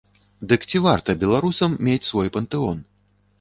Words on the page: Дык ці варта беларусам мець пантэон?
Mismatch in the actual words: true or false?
true